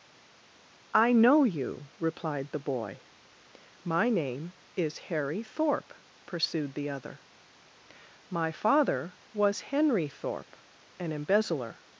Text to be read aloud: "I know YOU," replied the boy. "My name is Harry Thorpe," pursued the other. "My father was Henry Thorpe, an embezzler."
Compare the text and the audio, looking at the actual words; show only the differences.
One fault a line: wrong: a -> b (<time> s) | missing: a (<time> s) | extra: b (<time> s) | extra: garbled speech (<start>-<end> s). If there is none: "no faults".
no faults